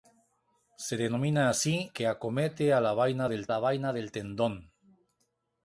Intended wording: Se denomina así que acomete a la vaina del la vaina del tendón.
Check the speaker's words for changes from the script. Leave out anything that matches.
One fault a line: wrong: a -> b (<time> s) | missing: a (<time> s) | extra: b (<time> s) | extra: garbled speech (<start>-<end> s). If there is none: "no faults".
no faults